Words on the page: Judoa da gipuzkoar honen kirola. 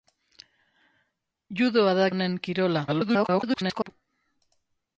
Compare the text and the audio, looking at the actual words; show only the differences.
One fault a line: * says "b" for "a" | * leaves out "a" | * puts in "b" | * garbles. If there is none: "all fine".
* leaves out "gipuzkoar"
* garbles